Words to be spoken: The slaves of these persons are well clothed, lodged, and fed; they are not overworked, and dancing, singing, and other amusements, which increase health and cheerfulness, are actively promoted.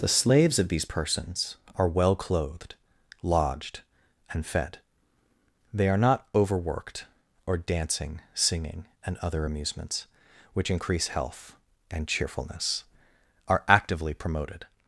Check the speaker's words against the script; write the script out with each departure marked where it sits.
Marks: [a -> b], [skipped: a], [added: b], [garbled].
The slaves of these persons are well clothed, lodged, and fed; they are not overworked, [and -> or] dancing, singing, and other amusements, which increase health and cheerfulness, are actively promoted.